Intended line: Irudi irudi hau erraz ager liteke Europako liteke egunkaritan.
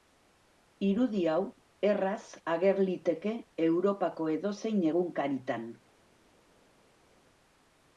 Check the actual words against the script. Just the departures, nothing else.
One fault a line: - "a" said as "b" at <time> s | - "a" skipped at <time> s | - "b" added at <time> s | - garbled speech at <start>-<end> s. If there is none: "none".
- "irudi" skipped at 1.2 s
- "liteke" said as "edozein" at 4.4 s